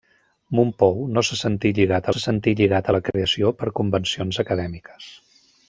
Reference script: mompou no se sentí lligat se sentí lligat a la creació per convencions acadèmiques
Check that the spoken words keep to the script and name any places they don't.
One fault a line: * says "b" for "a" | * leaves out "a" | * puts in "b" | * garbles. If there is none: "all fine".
all fine